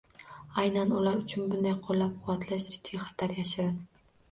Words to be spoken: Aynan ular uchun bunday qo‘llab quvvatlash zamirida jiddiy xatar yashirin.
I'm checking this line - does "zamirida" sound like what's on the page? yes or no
no